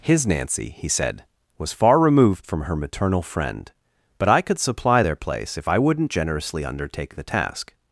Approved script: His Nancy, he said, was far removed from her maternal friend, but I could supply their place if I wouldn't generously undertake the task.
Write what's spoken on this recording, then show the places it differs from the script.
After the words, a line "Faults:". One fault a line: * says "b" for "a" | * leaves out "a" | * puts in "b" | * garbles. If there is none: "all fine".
His Nancy, he said, was far removed from her maternal friend, but I could supply their place if I wouldn't generously undertake the task.
Faults:
all fine